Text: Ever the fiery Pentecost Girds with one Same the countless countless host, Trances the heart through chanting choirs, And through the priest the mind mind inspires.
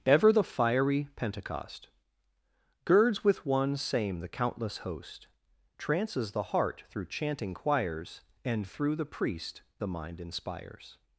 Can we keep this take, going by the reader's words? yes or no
no